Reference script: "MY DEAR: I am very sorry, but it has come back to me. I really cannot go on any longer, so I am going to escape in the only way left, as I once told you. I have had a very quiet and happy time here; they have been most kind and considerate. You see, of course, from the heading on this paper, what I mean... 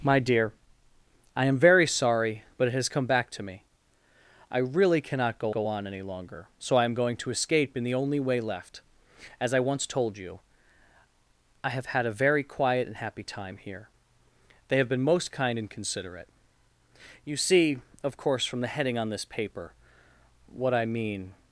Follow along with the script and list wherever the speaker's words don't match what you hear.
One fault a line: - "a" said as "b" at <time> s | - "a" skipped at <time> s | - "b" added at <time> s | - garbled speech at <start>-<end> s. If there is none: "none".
- "go" added at 5.5 s